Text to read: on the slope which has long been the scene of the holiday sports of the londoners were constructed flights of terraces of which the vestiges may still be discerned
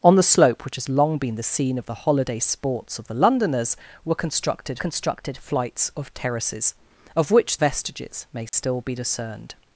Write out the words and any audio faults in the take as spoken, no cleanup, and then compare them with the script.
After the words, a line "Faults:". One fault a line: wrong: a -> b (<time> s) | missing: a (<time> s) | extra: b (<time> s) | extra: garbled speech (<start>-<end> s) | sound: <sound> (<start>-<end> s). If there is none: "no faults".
on the slope which has long been the scene of the holiday sports of the londoners were constructed constructed flights of terraces of which vestiges may still be discerned
Faults:
extra: constructed (4.8 s)
missing: the (7.6 s)
sound: dropout (8.5-8.5 s)